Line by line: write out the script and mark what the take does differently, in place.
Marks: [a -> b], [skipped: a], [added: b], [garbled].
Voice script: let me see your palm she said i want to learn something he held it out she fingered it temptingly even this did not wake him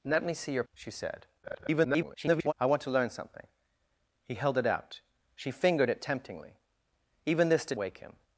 let me see your [skipped: palm] she said [garbled] i want to learn something he held it out she fingered it temptingly even this did [skipped: not] wake him